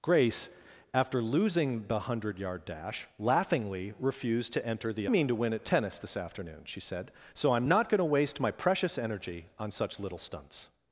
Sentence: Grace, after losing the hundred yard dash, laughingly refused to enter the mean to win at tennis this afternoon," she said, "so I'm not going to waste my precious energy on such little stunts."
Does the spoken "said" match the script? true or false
true